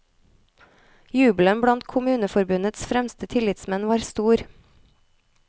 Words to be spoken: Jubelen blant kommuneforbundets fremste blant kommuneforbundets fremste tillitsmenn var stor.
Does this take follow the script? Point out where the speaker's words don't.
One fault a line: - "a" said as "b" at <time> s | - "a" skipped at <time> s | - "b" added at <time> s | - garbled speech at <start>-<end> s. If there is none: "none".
- "blant kommuneforbundets fremste" skipped at 3.3 s